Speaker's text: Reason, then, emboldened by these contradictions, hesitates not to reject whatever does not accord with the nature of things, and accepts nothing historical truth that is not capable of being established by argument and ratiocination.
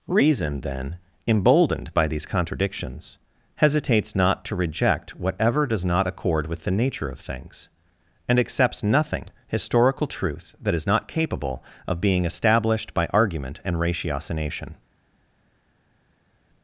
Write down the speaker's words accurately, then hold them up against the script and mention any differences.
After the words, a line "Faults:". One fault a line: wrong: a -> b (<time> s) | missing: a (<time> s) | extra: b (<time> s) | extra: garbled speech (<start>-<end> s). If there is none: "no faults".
Reason, then, emboldened by these contradictions, hesitates not to reject whatever does not accord with the nature of things, and accepts nothing historical truth that is not capable of being established by argument and ratiocination.
Faults:
no faults